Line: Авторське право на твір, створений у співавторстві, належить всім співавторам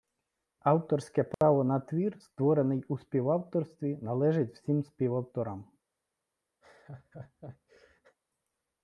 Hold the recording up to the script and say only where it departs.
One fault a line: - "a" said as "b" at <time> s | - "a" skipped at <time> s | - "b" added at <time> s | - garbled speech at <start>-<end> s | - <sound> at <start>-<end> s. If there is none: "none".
- dropout at 1.3-1.4 s
- laugh at 6.6-8.2 s